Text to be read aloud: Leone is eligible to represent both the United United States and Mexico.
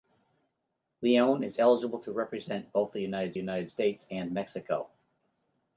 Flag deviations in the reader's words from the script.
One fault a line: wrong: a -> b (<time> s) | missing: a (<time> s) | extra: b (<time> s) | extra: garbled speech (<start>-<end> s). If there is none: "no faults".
no faults